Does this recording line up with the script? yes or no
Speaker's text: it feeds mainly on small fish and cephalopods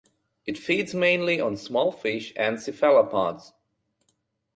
yes